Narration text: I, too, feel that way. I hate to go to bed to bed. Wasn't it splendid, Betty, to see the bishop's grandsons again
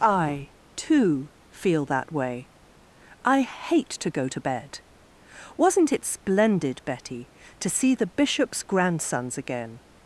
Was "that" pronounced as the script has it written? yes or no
yes